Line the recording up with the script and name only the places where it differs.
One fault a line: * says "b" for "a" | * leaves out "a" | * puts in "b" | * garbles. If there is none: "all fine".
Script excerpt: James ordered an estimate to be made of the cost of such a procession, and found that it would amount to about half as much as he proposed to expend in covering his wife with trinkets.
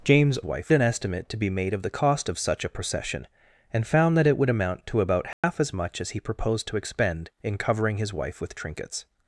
* says "wife" for "ordered"